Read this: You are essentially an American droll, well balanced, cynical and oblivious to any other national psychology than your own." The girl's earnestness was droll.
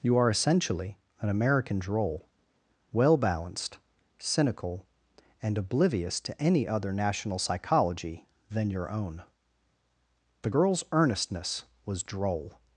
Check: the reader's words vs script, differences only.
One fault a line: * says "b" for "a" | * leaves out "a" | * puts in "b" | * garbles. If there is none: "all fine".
all fine